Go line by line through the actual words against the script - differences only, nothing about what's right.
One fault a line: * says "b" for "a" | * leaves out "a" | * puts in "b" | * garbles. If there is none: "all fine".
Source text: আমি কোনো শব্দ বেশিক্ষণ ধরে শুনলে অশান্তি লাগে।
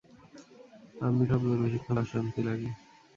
* leaves out "কোনো"
* leaves out "ধরে শুনলে"